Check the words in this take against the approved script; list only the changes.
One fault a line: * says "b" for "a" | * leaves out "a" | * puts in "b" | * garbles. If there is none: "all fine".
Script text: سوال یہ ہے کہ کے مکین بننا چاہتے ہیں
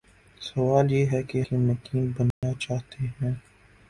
all fine